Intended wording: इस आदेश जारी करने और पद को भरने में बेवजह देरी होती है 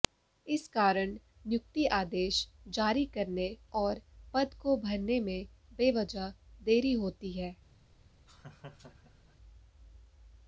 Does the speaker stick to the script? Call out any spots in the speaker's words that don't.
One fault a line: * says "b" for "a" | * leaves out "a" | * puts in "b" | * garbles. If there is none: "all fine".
* puts in "कारण नियुक्ति"